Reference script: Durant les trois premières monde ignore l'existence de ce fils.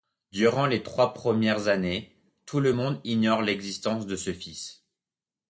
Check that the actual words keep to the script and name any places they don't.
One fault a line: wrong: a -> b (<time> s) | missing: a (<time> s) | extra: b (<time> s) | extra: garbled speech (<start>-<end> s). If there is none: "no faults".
extra: années tout le (1.7 s)